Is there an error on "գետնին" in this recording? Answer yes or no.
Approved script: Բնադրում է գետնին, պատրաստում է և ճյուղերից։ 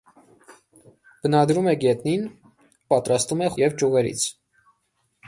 no